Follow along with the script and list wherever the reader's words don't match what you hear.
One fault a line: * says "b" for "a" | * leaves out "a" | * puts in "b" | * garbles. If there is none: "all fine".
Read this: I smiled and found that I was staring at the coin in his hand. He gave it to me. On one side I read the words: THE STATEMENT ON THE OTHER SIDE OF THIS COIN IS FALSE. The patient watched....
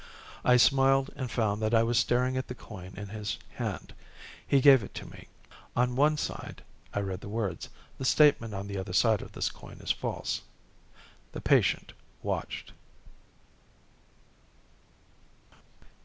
all fine